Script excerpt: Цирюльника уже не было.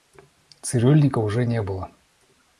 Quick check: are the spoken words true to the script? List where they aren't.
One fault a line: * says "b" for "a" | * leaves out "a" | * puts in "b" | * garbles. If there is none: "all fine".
all fine